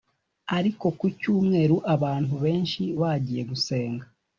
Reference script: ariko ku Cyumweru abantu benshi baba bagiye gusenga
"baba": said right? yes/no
no